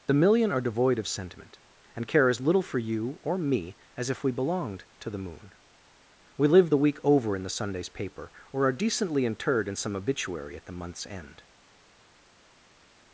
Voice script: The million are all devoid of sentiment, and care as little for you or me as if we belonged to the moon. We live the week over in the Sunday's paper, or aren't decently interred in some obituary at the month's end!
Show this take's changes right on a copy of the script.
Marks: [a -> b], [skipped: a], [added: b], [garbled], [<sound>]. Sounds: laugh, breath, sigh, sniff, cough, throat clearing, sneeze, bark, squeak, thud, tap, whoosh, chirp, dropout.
The million are [skipped: all] devoid of sentiment, and care as little for you or me as if we belonged to the moon. We live the week over in the Sunday's paper, or [aren't -> are] decently interred in some obituary at the month's end!